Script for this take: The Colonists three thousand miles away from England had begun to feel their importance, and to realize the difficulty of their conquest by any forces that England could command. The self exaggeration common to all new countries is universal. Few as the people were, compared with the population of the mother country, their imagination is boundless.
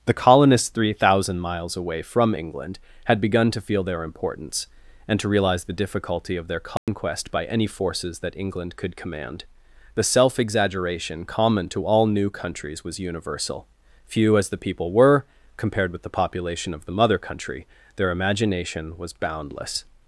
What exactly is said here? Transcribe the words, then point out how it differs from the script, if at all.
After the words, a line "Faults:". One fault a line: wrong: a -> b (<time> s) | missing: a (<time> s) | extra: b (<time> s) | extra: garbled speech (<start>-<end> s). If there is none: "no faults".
The Colonists three thousand miles away from England had begun to feel their importance, and to realize the difficulty of their conquest by any forces that England could command. The self exaggeration common to all new countries was universal. Few as the people were, compared with the population of the mother country, their imagination was boundless.
Faults:
wrong: is -> was (12.8 s)
wrong: is -> was (19.0 s)